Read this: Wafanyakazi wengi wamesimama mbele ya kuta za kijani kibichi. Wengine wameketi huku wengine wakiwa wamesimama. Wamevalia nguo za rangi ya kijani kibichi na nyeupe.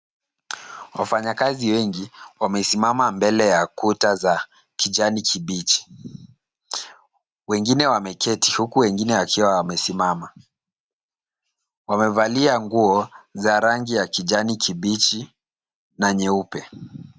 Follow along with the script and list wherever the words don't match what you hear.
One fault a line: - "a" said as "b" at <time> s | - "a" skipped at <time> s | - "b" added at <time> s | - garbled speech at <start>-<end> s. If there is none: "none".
none